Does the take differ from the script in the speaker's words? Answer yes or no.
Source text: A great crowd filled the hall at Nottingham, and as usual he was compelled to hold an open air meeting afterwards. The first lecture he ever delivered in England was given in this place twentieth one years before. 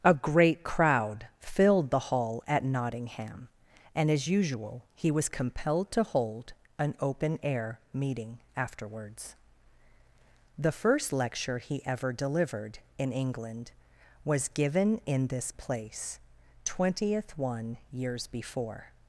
no